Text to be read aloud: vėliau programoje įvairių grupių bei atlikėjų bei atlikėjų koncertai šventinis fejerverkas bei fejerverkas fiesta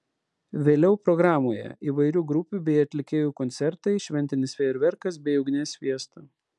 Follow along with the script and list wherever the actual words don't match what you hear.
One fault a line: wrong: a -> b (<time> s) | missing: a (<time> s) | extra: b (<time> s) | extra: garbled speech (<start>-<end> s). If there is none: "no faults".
missing: bei atlikėjų (3.4 s)
wrong: fejerverkas -> ugnies (5.4 s)